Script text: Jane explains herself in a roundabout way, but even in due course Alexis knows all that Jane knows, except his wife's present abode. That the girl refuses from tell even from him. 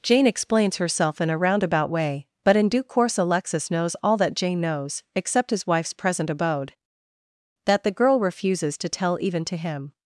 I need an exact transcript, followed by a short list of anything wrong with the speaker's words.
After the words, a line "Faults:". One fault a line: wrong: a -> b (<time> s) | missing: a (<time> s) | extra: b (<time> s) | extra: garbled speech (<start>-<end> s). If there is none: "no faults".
Jane explains herself in a roundabout way, but in due course Alexis knows all that Jane knows, except his wife's present abode. That the girl refuses to tell even to him.
Faults:
missing: even (2.6 s)
wrong: from -> to (8.8 s)
wrong: from -> to (9.4 s)